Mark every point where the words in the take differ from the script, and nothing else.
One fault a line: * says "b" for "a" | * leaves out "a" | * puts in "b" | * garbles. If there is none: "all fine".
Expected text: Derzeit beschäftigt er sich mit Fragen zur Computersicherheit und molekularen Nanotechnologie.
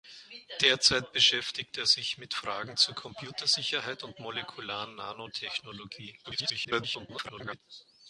* garbles